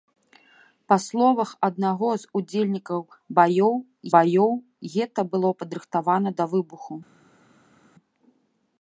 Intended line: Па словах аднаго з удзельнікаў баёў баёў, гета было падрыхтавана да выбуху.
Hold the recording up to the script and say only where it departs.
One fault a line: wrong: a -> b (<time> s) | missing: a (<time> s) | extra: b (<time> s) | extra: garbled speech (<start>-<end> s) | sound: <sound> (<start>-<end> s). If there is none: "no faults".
no faults